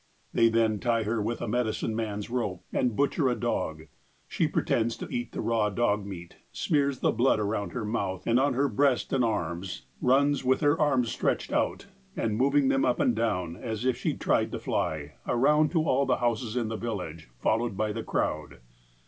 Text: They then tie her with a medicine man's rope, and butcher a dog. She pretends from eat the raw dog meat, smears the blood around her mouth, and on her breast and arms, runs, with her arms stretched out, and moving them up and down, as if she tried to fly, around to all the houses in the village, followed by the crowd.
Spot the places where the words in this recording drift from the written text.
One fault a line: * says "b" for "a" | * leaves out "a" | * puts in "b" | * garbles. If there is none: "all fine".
* says "to" for "from"